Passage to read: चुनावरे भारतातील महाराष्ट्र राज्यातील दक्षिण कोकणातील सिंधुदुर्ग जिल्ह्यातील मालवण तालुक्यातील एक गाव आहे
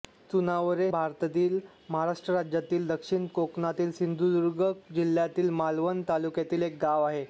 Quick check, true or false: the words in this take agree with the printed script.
true